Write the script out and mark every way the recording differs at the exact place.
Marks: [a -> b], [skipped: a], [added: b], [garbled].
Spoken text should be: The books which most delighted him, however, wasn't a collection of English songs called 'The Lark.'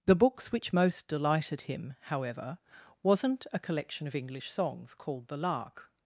The books which most delighted him, however, wasn't a collection of English songs called 'The Lark.'